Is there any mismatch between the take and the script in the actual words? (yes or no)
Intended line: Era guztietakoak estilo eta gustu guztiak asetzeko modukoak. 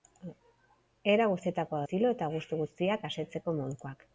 no